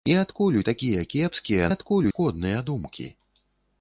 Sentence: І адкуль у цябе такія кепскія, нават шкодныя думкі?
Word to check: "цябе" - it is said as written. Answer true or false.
false